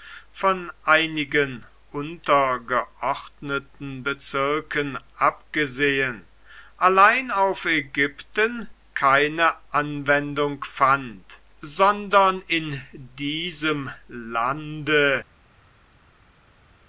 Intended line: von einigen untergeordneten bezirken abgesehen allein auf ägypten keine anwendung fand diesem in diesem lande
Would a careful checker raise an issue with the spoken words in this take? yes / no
yes